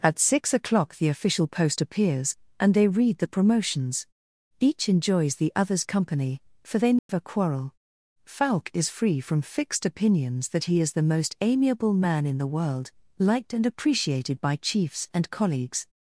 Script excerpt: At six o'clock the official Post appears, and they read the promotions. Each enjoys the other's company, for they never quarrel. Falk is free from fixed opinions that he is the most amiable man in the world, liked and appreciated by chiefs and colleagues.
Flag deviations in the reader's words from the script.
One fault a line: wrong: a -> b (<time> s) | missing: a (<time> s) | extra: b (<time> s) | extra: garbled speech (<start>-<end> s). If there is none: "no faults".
no faults